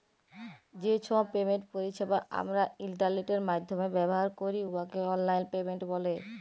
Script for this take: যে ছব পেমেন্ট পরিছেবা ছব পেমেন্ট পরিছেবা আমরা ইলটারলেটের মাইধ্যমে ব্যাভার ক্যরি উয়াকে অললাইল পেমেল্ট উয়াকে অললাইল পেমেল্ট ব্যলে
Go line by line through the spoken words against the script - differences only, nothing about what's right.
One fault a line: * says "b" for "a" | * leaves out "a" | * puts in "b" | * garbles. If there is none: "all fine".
* leaves out "ছব পেমেন্ট পরিছেবা"
* leaves out "উয়াকে অললাইল পেমেল্ট"